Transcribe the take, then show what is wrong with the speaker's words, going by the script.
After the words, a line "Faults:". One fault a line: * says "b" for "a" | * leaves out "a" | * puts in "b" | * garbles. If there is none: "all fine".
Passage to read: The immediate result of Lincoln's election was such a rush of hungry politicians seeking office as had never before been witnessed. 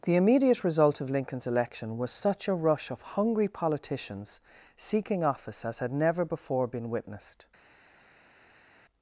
The immediate result of Lincoln's election was such a rush of hungry politicians seeking office as had never before been witnessed.
Faults:
all fine